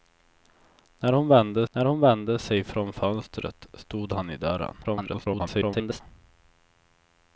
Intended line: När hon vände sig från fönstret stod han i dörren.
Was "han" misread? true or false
false